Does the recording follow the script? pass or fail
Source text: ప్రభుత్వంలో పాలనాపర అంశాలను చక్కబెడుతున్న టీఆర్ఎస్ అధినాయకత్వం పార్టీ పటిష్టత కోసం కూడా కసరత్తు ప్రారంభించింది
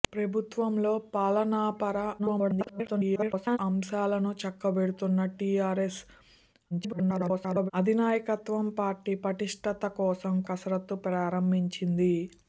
fail